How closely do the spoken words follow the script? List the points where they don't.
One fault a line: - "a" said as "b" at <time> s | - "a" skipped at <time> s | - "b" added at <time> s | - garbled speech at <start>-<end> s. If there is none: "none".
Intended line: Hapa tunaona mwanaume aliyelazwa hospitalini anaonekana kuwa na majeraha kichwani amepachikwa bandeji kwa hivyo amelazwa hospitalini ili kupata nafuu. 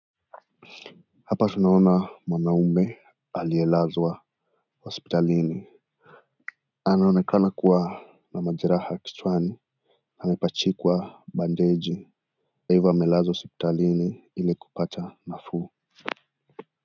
- "kwa" skipped at 12.1 s